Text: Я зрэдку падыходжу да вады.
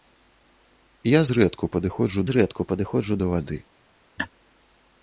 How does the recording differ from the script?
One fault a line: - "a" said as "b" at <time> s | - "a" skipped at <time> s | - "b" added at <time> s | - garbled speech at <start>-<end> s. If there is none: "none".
- "зрэдку падыходжу" added at 2.3 s